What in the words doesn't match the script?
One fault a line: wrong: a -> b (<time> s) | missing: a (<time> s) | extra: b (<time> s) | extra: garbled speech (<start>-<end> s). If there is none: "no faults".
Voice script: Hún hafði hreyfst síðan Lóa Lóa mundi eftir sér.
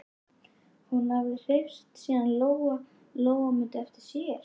no faults